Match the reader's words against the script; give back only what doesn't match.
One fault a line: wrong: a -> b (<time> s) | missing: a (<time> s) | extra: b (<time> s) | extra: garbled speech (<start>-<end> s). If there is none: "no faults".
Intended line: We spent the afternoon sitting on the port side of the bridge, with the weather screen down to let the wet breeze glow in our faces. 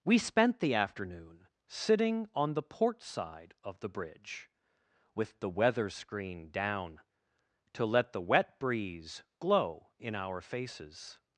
no faults